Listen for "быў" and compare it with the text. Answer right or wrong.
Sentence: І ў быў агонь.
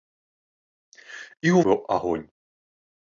right